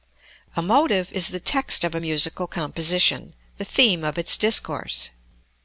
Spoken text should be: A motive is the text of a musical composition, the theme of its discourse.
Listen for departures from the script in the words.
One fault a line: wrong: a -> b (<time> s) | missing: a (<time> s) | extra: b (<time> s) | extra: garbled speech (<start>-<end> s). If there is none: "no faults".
no faults